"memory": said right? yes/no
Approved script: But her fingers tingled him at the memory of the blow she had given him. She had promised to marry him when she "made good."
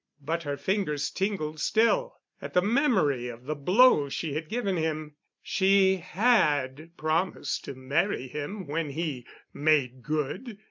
yes